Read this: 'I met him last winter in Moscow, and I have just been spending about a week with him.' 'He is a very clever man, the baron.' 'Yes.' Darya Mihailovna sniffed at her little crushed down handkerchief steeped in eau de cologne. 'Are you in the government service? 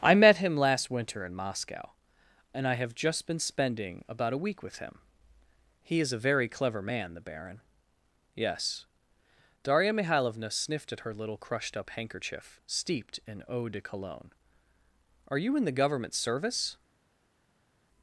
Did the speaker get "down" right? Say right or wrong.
wrong